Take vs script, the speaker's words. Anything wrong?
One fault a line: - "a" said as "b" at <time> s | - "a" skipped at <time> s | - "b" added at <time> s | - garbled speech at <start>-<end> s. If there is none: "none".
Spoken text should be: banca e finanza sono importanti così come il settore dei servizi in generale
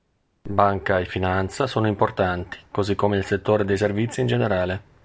none